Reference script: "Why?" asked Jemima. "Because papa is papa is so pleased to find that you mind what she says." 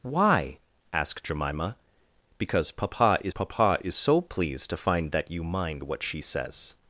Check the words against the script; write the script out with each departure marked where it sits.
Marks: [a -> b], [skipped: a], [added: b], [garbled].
"Why?" asked Jemima. "Because papa is papa is so pleased to find that you mind what she says."